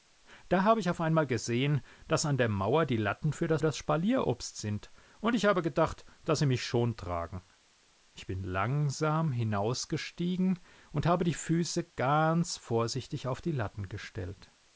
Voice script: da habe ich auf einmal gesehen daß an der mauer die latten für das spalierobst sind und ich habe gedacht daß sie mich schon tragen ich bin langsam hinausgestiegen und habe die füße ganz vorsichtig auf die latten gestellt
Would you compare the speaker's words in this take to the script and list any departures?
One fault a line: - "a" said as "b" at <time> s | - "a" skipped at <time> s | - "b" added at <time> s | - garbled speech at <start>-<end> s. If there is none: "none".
- "das" added at 3.6 s